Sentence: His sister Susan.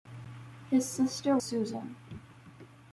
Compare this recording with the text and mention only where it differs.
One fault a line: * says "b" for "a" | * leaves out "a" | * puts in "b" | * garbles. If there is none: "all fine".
all fine